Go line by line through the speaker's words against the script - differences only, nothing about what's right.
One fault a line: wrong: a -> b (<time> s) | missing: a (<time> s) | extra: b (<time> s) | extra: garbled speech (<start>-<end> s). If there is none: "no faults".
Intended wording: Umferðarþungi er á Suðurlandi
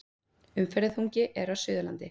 no faults